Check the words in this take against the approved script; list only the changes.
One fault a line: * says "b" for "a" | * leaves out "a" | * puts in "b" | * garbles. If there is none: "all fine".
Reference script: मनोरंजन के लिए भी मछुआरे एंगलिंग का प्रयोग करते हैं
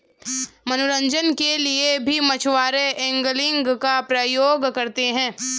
all fine